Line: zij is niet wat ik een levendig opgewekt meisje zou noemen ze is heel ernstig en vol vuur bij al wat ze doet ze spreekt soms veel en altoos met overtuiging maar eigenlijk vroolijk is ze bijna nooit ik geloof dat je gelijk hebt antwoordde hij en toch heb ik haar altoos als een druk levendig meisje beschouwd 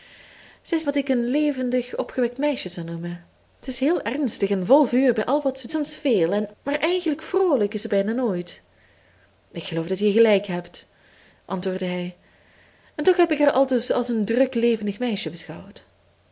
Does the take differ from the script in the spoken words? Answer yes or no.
yes